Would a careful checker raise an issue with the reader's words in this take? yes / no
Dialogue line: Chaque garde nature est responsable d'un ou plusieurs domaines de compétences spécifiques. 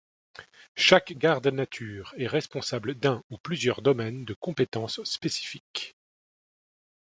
no